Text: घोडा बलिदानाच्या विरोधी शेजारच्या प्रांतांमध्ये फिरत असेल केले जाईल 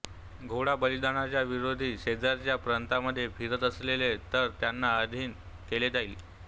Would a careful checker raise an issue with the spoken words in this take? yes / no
yes